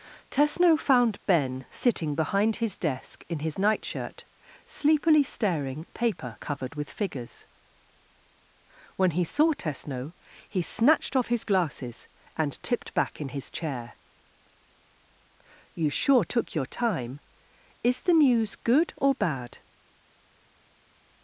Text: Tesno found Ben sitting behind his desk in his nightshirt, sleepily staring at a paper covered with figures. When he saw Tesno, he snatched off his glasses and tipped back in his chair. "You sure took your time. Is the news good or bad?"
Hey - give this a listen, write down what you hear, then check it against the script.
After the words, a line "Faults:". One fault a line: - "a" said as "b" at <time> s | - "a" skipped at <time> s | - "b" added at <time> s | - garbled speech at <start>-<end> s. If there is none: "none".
Tesno found Ben sitting behind his desk in his nightshirt, sleepily staring a paper covered with figures. When he saw Tesno, he snatched off his glasses and tipped back in his chair. "You sure took your time. Is the news good or bad?"
Faults:
- "at" skipped at 5.8 s